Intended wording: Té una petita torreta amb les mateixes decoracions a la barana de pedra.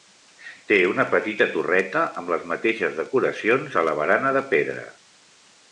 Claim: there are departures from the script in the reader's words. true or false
false